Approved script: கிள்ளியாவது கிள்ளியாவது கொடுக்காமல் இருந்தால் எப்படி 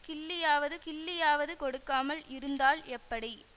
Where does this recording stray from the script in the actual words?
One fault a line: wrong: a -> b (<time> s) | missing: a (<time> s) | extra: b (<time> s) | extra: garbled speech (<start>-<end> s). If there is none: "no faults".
no faults